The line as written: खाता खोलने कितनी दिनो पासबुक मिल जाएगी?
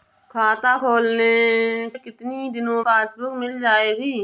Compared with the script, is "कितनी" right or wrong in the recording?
right